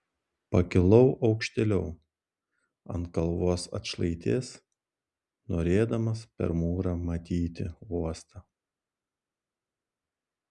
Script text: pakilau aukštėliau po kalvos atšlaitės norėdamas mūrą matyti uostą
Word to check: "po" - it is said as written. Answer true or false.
false